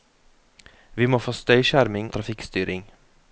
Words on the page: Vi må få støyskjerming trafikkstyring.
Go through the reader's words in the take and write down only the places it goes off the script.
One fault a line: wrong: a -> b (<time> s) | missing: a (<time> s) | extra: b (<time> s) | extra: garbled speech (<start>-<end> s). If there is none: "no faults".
no faults